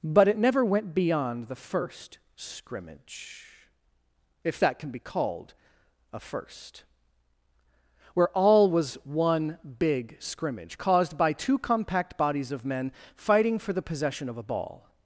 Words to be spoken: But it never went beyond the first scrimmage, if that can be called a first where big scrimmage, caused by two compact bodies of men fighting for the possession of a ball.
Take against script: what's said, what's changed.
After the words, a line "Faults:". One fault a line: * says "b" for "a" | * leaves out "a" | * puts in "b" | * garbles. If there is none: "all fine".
But it never went beyond the first scrimmage, if that can be called a first where all was one big scrimmage, caused by two compact bodies of men fighting for the possession of a ball.
Faults:
* puts in "all was one"